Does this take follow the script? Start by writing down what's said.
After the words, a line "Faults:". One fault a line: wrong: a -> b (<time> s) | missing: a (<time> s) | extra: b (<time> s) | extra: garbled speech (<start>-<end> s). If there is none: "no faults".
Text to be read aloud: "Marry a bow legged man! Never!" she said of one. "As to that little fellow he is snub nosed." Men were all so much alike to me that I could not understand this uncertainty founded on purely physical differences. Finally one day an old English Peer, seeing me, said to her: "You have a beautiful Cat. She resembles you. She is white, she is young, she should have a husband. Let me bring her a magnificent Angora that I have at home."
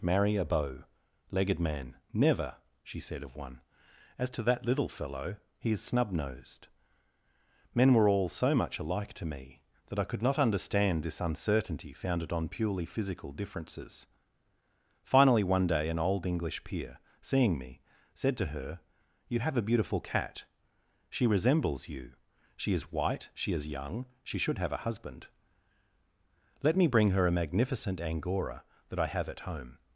"Marry a bow legged man! Never!" she said of one. "As to that little fellow he is snub nosed." Men were all so much alike to me that I could not understand this uncertainty founded on purely physical differences. Finally one day an old English Peer, seeing me, said to her: "You have a beautiful Cat. She resembles you. She is white, she is young, she should have a husband. Let me bring her a magnificent Angora that I have at home."
Faults:
no faults